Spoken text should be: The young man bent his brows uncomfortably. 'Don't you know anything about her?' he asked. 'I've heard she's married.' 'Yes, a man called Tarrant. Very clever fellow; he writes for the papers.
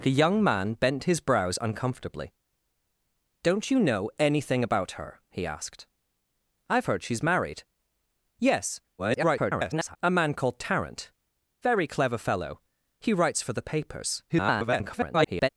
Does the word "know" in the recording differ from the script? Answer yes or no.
no